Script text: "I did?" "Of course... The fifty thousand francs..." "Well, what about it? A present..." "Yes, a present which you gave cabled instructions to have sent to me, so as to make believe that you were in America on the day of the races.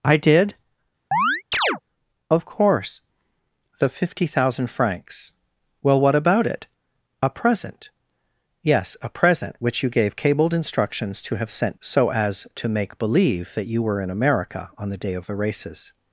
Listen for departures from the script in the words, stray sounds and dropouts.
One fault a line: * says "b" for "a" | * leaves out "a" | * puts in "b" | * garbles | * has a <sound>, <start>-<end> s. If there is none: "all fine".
* has a chirp, 1.1-1.8 s
* leaves out "to me"